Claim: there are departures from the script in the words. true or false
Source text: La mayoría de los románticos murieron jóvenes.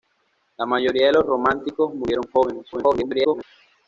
true